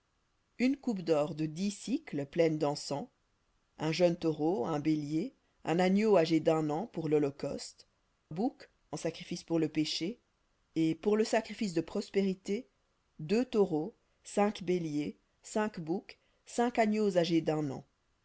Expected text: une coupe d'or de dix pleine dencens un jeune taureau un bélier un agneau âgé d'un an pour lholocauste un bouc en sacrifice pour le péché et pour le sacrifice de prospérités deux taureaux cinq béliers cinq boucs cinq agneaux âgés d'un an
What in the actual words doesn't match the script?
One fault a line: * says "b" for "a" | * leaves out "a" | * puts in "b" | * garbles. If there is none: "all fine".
* leaves out "un"